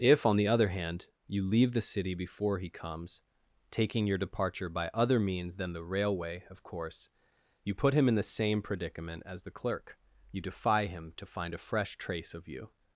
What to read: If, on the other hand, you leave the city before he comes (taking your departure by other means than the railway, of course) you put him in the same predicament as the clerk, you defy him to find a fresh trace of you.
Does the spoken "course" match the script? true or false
true